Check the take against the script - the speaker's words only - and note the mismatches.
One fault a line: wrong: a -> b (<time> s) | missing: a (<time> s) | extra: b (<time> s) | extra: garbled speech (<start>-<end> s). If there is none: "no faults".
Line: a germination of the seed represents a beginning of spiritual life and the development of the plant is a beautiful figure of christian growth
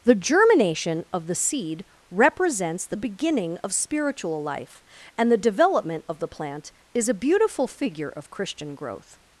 wrong: a -> the (0.0 s)
wrong: a -> the (2.9 s)